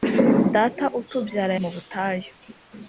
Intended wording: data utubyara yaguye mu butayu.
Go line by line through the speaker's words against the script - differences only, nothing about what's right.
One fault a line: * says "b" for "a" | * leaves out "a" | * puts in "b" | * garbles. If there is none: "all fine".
* leaves out "yaguye"